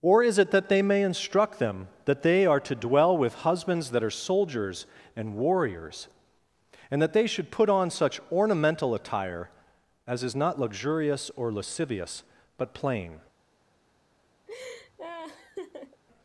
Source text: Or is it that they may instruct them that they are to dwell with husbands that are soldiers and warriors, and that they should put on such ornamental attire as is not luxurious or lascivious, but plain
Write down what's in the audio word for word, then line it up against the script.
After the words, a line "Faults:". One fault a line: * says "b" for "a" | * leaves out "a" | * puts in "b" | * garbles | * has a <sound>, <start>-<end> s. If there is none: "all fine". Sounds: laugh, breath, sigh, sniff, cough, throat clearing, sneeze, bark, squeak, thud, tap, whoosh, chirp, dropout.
Or is it that they may instruct them that they are to dwell with husbands that are soldiers and warriors, and that they should put on such ornamental attire as is not luxurious or lascivious, but plain
Faults:
* has a laugh, 14.5-16.0 s